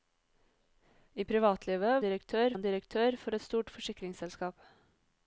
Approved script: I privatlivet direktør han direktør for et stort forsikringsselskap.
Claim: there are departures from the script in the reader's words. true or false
false